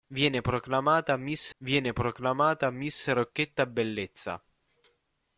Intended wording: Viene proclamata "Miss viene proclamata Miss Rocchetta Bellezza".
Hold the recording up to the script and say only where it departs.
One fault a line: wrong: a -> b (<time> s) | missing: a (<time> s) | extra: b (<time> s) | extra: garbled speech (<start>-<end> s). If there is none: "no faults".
no faults